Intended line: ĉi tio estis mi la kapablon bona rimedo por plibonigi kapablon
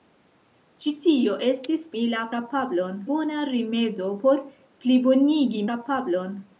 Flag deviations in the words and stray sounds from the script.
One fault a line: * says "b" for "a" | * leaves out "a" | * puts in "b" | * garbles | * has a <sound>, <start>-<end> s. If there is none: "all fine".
all fine